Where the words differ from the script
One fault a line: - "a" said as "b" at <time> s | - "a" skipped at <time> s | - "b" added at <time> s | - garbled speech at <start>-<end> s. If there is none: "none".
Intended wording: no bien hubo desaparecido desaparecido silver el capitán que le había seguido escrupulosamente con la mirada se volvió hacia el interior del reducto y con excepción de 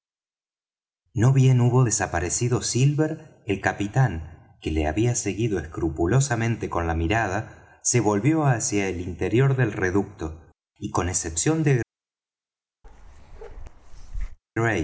- "desaparecido" skipped at 2.6 s